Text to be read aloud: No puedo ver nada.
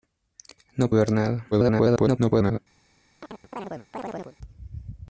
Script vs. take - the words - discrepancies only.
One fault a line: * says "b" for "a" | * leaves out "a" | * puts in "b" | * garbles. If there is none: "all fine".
* leaves out "puedo"
* garbles